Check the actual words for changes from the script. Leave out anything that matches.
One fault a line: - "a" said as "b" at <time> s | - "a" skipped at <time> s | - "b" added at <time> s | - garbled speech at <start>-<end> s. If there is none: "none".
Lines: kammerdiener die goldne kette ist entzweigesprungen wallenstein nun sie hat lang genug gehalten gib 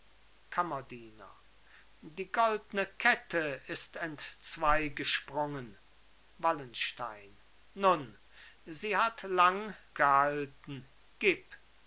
- "genug" skipped at 9.8 s